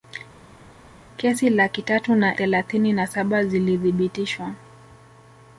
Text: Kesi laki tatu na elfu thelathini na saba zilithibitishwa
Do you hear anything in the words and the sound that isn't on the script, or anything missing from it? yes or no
yes